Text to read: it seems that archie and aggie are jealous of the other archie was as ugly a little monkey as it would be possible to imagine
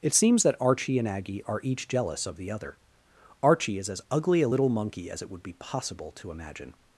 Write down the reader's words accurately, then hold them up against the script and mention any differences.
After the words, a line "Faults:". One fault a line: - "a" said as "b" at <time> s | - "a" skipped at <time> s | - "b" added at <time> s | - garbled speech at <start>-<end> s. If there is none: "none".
it seems that archie and aggie are each jealous of the other archie is as ugly a little monkey as it would be possible to imagine
Faults:
- "each" added at 1.6 s
- "was" said as "is" at 3.8 s